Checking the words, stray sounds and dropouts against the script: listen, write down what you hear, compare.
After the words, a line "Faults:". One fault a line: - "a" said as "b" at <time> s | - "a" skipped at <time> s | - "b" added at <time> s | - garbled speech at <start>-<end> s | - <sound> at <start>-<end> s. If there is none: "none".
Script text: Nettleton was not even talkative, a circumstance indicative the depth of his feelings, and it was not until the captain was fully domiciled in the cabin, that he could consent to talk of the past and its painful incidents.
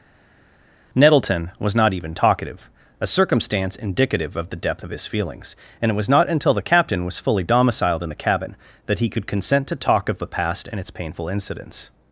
Nettleton was not even talkative, a circumstance indicative of the depth of his feelings, and it was not until the captain was fully domiciled in the cabin, that he could consent to talk of the past and its painful incidents.
Faults:
- "of" added at 4.4 s